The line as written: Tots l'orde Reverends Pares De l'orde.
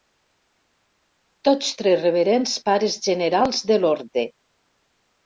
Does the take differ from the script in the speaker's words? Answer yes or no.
yes